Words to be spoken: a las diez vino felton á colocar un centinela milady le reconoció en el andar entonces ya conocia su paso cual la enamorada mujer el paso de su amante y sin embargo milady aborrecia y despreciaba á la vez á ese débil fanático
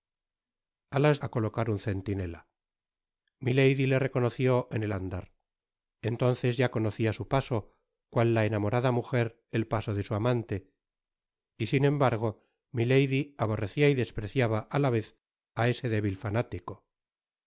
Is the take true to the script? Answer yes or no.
no